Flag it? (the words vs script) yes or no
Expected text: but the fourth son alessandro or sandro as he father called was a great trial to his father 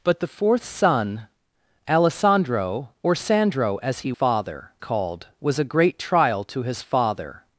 no